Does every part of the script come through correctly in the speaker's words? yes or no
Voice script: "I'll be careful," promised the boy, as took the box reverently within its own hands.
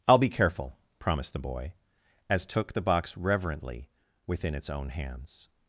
yes